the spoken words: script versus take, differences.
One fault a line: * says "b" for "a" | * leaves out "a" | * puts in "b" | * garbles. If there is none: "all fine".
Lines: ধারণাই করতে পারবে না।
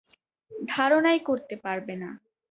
all fine